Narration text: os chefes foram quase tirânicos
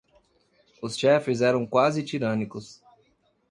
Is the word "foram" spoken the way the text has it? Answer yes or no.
no